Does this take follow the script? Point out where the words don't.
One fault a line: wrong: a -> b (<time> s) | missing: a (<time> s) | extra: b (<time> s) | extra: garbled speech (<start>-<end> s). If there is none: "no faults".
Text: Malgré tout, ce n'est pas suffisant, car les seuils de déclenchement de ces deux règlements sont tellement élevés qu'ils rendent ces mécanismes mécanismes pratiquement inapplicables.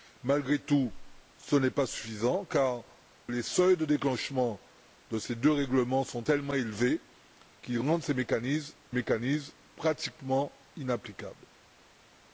no faults